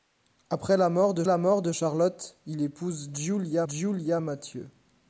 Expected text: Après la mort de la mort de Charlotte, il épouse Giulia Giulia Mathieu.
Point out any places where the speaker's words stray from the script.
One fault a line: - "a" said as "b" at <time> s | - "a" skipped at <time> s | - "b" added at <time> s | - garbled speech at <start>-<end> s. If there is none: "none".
none